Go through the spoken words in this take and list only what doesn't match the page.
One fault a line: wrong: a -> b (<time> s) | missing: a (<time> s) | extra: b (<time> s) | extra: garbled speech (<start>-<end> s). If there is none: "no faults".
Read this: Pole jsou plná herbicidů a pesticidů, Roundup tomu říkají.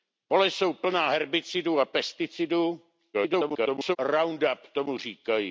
extra: garbled speech (3.1-4.0 s)